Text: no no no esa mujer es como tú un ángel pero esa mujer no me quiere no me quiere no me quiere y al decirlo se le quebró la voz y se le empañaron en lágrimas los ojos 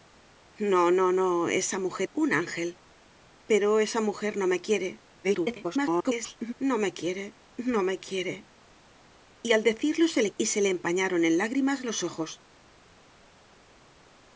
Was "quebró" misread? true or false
true